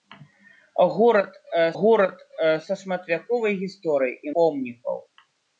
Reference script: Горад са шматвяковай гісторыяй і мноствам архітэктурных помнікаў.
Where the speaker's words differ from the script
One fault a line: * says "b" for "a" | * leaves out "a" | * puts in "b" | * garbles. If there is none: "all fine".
* puts in "горад"
* leaves out "мноствам архітэктурных"